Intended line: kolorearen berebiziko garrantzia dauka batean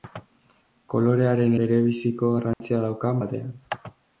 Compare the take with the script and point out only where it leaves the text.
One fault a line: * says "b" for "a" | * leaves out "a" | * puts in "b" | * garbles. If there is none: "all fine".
all fine